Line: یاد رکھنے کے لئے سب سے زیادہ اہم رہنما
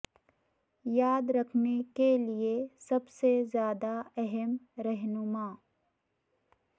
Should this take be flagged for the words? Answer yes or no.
no